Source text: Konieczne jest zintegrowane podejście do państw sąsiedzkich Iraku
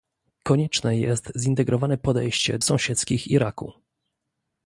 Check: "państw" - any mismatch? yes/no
yes